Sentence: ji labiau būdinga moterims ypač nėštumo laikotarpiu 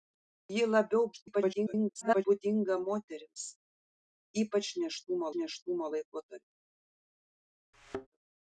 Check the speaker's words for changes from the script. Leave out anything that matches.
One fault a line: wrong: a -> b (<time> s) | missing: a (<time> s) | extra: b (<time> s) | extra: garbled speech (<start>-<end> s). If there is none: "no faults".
extra: garbled speech (1.1-2.2 s)
extra: nėštumo (5.4 s)